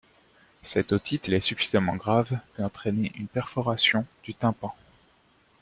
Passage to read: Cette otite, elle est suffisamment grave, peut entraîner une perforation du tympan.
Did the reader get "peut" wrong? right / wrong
right